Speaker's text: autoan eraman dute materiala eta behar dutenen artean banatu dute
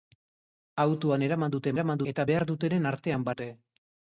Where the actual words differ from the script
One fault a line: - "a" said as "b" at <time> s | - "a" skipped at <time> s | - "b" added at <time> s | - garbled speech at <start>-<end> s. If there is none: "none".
- "materiala" said as "eraman" at 1.7 s
- "banatu" skipped at 3.3 s